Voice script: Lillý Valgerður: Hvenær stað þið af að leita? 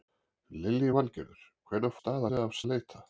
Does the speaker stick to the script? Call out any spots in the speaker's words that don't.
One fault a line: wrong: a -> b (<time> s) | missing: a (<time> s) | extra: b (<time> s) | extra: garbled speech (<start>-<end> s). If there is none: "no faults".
no faults